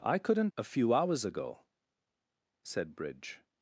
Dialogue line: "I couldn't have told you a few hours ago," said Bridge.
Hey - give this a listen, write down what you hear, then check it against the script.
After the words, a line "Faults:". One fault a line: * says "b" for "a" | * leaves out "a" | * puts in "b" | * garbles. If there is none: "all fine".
"I couldn't a few hours ago," said Bridge.
Faults:
* leaves out "have told you"